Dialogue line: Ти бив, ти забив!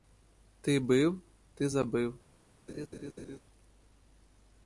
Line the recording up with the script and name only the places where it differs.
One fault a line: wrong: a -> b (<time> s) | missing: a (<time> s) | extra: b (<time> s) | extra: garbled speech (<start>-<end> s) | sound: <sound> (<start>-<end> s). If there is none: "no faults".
sound: laugh (2.7-3.4 s)